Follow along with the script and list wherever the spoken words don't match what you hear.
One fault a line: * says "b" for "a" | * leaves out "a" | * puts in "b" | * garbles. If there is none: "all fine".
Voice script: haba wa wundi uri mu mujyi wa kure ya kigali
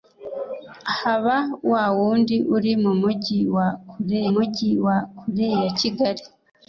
* puts in "mujyi wa kure"